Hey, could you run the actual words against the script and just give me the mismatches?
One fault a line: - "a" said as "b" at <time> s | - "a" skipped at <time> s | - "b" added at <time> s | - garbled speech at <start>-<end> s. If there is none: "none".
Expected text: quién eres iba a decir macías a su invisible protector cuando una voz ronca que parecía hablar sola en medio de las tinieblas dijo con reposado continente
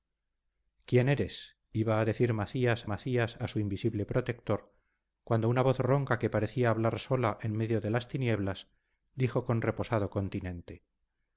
- "macías" added at 2.8 s